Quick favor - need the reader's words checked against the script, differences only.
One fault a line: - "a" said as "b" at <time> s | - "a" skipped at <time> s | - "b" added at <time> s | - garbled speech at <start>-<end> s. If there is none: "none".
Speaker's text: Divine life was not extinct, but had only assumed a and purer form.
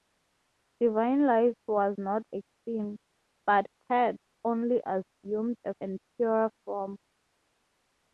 none